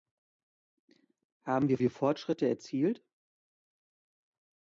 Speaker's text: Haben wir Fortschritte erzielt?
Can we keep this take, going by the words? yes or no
no